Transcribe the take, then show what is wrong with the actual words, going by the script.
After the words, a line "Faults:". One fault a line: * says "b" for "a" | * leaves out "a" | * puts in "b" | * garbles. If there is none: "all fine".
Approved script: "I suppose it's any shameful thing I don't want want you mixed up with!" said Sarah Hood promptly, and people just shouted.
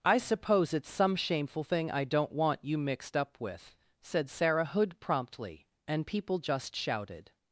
"I suppose it's some shameful thing I don't want you mixed up with!" said Sarah Hood promptly, and people just shouted.
Faults:
* says "some" for "any"
* leaves out "want"